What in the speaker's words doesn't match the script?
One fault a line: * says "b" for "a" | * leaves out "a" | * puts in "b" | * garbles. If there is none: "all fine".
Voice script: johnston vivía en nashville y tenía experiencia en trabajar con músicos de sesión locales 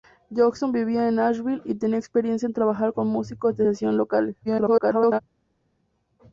* garbles